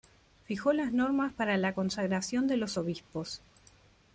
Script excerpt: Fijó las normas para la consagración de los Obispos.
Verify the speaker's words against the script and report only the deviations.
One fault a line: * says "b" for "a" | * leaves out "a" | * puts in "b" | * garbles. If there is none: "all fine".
all fine